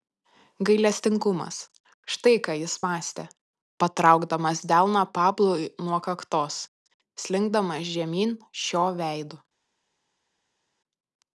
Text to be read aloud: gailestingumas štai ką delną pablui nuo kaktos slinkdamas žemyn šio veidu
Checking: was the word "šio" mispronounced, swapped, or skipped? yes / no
no